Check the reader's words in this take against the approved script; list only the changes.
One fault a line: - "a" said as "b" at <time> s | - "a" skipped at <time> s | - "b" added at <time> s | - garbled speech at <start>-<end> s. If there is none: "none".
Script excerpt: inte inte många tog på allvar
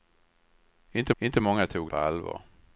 none